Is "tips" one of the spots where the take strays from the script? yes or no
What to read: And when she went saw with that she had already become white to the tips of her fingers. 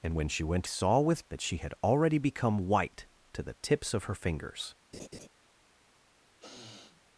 no